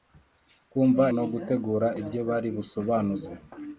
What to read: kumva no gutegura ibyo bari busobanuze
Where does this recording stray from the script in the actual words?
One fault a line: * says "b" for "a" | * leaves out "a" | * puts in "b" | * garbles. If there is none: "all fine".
all fine